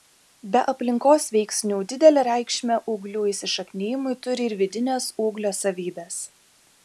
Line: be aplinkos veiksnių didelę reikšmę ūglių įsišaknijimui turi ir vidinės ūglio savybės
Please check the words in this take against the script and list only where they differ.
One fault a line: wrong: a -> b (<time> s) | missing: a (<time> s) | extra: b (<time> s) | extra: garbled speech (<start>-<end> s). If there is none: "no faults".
no faults